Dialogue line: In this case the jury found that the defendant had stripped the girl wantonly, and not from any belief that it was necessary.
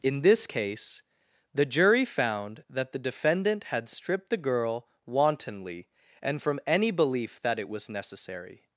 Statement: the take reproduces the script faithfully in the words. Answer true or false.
false